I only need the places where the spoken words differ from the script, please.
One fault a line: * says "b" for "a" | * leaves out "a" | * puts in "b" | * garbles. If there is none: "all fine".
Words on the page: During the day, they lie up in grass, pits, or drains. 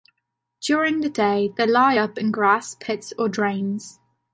all fine